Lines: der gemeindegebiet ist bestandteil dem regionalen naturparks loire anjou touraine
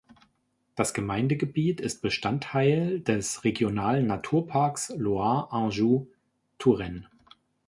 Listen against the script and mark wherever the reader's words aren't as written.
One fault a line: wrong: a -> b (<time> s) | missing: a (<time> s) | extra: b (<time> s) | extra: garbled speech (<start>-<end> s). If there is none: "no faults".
wrong: der -> das (0.7 s)
wrong: dem -> des (3.0 s)